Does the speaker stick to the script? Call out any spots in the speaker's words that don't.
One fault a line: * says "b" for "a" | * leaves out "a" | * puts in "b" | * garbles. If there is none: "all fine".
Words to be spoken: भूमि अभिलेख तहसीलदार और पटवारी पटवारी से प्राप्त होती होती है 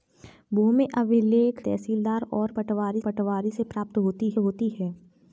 all fine